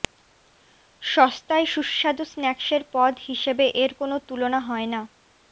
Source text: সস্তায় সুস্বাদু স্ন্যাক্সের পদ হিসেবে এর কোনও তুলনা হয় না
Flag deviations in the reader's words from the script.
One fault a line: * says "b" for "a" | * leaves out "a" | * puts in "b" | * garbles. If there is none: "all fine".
all fine